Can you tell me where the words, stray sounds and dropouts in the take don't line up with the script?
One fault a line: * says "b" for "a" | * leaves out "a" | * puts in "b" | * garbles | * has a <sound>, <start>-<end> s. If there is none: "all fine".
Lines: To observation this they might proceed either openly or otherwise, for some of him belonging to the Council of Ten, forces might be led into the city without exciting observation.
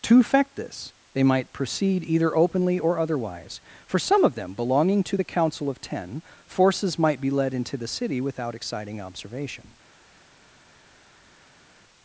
* says "effect" for "observation"
* says "them" for "him"